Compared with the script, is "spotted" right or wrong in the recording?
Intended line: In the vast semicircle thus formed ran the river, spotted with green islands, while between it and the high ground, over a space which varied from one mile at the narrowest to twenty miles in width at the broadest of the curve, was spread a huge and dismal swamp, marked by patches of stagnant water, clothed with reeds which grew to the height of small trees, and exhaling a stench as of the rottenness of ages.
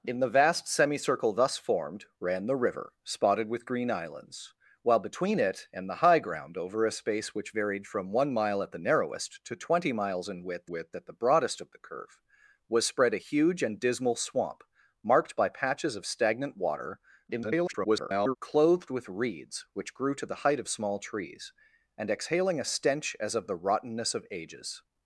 right